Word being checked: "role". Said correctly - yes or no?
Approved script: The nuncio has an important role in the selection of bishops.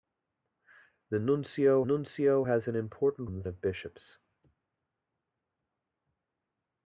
no